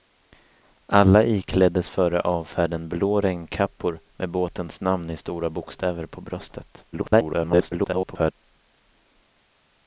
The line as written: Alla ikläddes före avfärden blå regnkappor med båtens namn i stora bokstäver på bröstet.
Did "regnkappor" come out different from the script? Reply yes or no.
no